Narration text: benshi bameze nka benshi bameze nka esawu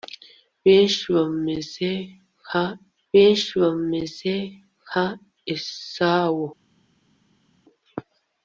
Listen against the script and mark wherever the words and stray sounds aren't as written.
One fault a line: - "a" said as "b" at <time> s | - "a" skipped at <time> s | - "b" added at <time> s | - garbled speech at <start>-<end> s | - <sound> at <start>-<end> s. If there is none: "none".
none